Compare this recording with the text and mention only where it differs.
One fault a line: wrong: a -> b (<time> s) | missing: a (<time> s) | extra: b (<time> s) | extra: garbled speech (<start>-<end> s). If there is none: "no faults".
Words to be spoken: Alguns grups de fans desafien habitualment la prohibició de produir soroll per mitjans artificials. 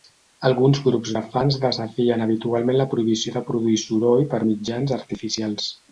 no faults